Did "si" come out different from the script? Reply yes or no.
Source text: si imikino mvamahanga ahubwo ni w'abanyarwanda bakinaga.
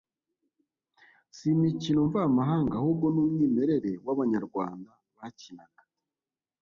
no